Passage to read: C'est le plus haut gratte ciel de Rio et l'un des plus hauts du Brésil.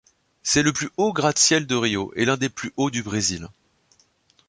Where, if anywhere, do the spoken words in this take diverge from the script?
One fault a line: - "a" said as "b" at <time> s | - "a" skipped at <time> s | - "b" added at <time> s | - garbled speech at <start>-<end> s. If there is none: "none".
none